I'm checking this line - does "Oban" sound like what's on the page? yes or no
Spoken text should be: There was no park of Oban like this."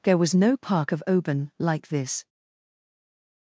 yes